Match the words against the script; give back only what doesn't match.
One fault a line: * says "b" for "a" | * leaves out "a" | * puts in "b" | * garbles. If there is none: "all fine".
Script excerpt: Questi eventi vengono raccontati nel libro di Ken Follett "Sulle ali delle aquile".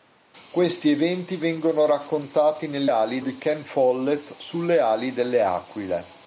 * says "ali" for "libro"